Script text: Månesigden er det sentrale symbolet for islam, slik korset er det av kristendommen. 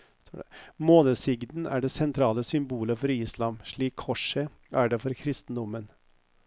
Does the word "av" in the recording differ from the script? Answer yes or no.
yes